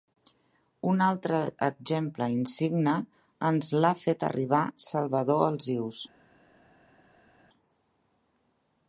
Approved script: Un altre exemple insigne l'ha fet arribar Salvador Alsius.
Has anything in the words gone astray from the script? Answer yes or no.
yes